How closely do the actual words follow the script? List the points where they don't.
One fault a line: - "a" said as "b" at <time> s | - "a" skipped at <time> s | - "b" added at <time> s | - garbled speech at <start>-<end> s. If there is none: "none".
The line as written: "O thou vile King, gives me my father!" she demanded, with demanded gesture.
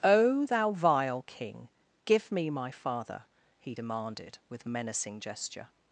- "gives" said as "give" at 2.0 s
- "she" said as "he" at 3.6 s
- "demanded" said as "menacing" at 4.6 s